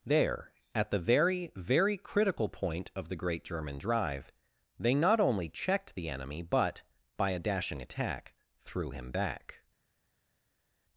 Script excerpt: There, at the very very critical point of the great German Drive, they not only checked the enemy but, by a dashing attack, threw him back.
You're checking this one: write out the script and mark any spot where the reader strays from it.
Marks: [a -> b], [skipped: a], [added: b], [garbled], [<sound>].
There, at the very very critical point of the great German Drive, they not only checked the enemy but, by a dashing attack, threw him back.